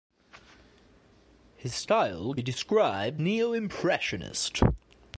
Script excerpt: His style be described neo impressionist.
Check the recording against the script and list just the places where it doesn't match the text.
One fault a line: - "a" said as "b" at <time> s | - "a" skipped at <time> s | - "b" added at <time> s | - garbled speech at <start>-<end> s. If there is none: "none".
none